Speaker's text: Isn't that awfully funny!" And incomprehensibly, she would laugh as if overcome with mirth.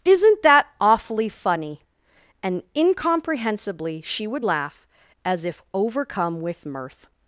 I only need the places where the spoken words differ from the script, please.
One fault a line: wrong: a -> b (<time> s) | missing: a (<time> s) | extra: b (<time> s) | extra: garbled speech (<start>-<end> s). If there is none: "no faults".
no faults